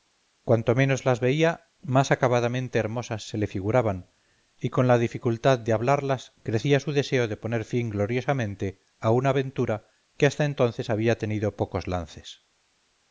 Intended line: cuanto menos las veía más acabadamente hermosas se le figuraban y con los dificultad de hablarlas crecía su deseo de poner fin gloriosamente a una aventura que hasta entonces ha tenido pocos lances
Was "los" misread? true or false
true